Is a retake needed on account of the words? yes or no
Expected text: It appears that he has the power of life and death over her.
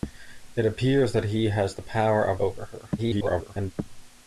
yes